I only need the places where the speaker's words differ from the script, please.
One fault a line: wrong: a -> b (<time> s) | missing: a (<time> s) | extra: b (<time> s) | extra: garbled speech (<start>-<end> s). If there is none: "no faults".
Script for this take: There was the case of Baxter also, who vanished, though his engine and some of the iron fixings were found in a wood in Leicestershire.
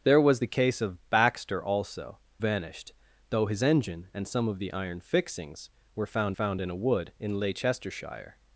missing: who (2.2 s)
extra: found (6.3 s)